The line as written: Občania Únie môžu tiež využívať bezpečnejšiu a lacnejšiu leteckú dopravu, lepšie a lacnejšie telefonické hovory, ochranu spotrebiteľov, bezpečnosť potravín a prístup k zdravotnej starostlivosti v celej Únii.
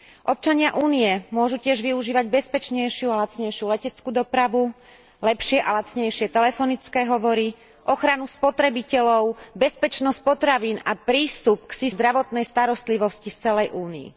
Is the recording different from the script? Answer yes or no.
no